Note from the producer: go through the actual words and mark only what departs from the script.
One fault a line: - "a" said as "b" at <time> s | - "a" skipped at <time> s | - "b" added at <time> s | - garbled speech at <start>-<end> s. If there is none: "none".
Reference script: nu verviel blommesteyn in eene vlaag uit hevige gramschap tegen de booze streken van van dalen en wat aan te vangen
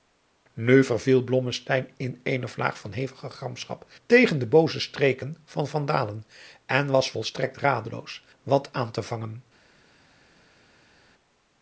- "uit" said as "van" at 2.8 s
- "was volstrekt radeloos" added at 6.9 s